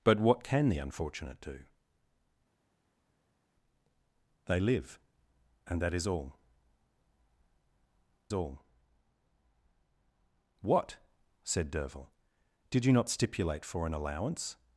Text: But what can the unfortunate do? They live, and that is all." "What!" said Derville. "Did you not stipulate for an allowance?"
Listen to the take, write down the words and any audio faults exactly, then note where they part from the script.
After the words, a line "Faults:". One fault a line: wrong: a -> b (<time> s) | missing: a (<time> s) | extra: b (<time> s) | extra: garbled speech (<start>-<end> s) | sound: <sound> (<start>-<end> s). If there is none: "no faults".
But what can the unfortunate do? They live, and that is all all." "What!" said Derville. "Did you not stipulate for an allowance?"
Faults:
extra: all (8.3 s)